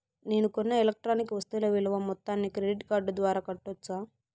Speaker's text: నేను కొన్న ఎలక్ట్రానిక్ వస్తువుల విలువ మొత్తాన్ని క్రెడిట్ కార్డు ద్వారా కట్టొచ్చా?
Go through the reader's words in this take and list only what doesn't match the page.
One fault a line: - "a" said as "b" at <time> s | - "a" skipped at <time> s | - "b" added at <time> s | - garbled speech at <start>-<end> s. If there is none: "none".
none